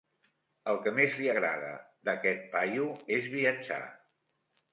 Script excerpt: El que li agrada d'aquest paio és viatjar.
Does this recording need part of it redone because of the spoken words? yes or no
yes